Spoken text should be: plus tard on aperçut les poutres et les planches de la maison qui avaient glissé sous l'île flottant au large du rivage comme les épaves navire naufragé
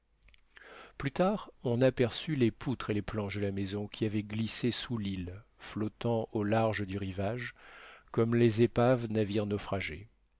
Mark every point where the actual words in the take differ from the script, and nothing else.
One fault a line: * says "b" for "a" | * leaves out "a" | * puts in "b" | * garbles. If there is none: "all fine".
all fine